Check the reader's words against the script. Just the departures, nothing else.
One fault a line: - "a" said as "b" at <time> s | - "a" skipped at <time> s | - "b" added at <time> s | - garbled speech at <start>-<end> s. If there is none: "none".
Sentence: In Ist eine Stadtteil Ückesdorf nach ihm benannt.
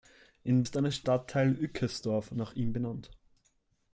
none